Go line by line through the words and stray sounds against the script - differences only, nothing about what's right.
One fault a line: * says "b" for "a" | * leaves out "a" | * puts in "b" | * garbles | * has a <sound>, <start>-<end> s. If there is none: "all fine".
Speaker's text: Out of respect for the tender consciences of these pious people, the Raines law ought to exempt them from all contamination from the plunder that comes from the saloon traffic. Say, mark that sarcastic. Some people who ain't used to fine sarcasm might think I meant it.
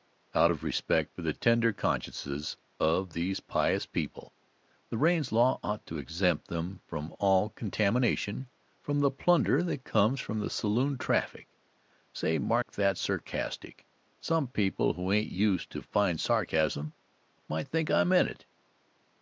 * has a dropout, 12.6-12.7 s